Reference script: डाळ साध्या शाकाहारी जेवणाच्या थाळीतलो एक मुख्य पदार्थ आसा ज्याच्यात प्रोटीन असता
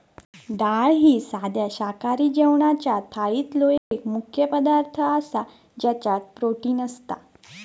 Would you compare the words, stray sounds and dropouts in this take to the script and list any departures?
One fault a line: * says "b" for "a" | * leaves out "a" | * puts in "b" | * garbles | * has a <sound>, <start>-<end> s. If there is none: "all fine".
* puts in "ही"
* has a dropout, 3.8-3.9 s